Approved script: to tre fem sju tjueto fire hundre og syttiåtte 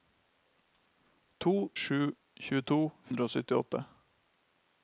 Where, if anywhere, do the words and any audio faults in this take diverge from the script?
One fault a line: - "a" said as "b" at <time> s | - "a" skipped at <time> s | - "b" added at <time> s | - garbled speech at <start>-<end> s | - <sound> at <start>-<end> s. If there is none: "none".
- "tre fem" skipped at 1.5 s
- "fire" skipped at 2.8 s